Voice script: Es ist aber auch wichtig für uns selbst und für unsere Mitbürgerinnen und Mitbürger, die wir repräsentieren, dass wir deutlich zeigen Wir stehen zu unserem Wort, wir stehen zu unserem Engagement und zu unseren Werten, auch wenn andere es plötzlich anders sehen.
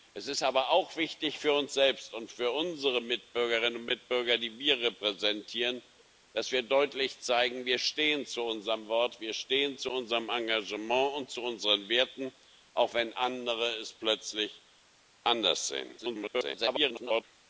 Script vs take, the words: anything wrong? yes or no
yes